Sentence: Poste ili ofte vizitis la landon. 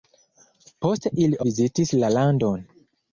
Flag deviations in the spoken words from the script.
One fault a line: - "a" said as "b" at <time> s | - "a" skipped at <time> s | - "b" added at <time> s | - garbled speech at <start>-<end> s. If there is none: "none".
- "ofte" skipped at 1.4 s